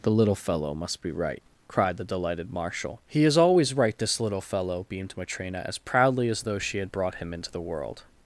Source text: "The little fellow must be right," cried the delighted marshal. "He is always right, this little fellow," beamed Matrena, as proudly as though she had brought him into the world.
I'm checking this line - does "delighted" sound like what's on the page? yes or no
yes